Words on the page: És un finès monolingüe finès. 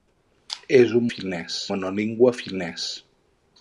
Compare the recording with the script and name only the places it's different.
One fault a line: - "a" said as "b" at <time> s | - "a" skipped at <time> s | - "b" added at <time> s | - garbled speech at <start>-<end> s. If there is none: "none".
none